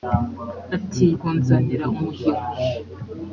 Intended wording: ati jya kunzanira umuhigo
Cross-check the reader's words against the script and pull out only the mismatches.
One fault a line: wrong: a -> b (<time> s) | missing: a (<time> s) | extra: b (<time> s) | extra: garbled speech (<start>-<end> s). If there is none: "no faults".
missing: jya (1.1 s)